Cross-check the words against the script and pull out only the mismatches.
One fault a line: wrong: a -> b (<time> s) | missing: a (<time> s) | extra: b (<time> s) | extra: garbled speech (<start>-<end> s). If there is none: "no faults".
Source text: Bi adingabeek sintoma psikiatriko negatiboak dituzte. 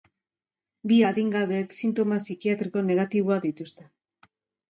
no faults